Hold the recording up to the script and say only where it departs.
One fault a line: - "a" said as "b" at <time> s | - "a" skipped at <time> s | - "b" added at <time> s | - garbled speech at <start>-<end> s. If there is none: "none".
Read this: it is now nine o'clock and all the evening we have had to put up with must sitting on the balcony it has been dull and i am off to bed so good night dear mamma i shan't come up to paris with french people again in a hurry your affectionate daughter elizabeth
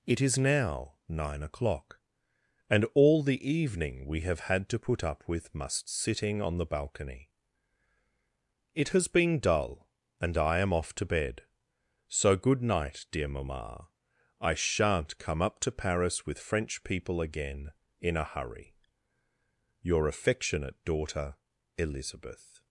none